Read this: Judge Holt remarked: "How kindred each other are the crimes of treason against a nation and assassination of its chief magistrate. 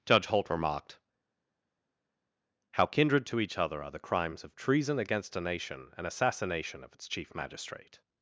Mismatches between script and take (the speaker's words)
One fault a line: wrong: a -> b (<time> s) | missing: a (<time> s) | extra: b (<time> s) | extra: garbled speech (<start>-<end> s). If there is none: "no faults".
extra: to (3.3 s)